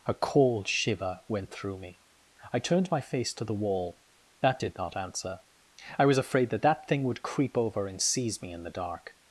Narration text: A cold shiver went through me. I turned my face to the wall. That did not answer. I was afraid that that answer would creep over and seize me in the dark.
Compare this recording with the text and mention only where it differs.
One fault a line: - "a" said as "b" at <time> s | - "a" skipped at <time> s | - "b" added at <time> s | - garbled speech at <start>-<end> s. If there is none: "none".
- "answer" said as "thing" at 6.9 s